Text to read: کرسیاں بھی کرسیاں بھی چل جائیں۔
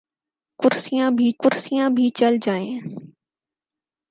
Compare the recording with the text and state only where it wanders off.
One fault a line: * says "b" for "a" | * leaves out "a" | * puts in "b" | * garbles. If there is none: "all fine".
all fine